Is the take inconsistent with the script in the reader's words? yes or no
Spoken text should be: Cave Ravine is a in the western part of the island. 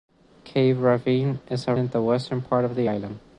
no